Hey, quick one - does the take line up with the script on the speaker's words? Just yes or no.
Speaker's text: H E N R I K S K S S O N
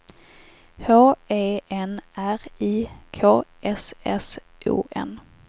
no